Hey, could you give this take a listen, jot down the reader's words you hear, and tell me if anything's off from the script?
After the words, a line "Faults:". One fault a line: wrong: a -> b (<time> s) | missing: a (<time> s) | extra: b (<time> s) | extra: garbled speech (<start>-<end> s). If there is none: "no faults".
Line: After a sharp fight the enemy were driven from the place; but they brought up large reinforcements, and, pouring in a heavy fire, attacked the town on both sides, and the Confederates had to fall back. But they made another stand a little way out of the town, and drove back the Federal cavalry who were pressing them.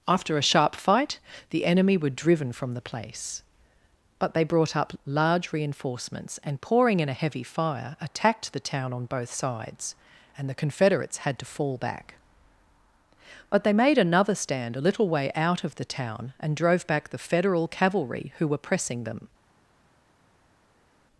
After a sharp fight the enemy were driven from the place; but they brought up large reinforcements, and, pouring in a heavy fire, attacked the town on both sides, and the Confederates had to fall back. But they made another stand a little way out of the town, and drove back the Federal cavalry who were pressing them.
Faults:
no faults